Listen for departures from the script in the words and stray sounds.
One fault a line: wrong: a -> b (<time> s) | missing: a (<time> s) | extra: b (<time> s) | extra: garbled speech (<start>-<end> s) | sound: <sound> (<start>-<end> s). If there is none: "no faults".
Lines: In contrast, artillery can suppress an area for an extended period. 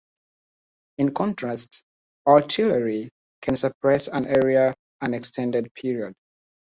missing: for (4.7 s)